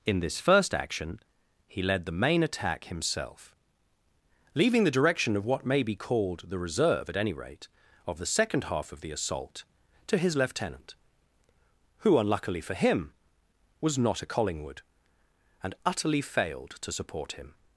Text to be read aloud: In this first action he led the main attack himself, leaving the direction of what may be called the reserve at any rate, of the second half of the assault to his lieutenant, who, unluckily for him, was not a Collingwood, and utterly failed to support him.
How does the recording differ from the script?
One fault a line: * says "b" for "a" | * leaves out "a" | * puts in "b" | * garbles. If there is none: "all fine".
all fine